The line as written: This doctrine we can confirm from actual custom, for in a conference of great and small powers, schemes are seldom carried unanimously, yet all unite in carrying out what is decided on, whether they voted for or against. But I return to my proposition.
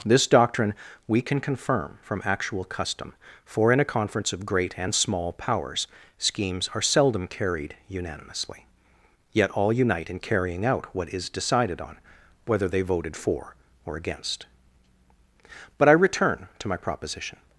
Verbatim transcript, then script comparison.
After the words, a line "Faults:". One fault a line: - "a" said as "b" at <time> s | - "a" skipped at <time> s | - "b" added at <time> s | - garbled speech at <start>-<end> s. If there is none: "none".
This doctrine we can confirm from actual custom, for in a conference of great and small powers, schemes are seldom carried unanimously, yet all unite in carrying out what is decided on, whether they voted for or against. But I return to my proposition.
Faults:
none